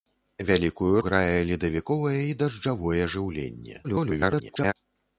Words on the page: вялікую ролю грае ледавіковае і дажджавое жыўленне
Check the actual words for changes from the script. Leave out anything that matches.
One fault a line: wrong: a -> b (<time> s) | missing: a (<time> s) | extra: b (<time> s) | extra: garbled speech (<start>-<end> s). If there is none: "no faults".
missing: ролю (0.9 s)
extra: garbled speech (3.8-4.7 s)